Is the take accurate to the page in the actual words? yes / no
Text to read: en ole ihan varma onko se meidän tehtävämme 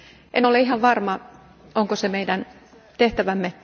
yes